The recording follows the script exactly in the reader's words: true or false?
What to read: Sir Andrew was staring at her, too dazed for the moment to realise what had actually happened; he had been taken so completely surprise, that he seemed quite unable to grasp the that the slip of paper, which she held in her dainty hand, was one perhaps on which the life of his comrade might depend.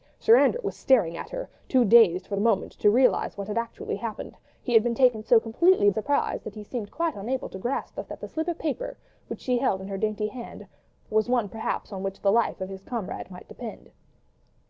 true